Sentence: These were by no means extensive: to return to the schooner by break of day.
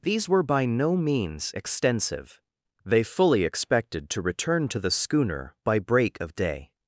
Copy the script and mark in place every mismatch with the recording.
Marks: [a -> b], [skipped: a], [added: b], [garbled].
These were by no means extensive: [added: they fully expected] to return to the schooner by break of day.